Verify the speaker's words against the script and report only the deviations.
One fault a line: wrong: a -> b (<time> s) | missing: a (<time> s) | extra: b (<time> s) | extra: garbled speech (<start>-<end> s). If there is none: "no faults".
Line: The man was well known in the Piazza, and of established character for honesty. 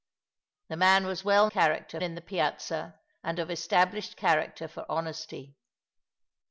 wrong: known -> character (1.5 s)